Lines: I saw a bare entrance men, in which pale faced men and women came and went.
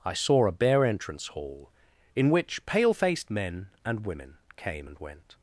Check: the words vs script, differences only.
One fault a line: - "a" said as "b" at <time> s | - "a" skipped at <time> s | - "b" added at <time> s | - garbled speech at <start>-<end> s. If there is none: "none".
- "men" said as "hall" at 1.3 s